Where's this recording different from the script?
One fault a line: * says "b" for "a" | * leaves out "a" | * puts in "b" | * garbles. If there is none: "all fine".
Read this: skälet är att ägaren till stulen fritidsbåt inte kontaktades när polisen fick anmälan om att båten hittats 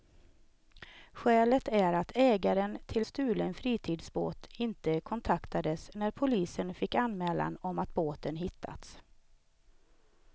all fine